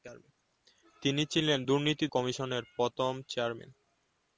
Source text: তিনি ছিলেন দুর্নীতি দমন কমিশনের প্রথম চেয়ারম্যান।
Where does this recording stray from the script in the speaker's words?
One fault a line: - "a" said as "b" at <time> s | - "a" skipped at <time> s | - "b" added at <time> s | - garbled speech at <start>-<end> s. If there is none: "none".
- "দমন" skipped at 2.1 s